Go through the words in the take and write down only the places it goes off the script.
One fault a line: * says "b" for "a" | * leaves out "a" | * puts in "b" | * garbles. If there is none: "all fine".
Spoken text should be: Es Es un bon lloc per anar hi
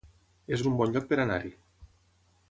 all fine